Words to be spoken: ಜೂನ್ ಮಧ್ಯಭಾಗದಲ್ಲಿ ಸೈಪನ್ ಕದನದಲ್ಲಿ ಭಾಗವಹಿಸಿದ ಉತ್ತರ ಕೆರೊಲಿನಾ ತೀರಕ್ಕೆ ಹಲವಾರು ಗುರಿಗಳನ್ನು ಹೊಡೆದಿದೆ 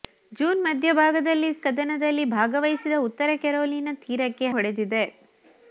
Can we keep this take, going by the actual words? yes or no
no